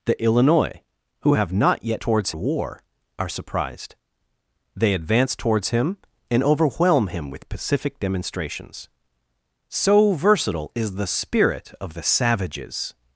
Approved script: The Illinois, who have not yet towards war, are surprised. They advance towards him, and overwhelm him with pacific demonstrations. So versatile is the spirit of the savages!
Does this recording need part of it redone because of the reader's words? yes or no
no